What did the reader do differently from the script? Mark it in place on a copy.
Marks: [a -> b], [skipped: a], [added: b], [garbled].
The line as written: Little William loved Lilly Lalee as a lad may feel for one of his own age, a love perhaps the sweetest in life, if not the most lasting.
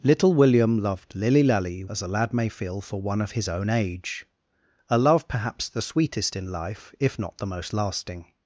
Little William loved Lilly Lalee as a lad may feel for one of his own age, a love perhaps the sweetest in life, if not the most lasting.